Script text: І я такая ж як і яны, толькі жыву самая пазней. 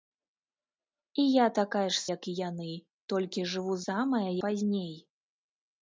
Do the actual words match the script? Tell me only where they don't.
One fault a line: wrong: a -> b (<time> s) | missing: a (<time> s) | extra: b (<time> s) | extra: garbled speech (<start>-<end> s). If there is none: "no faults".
no faults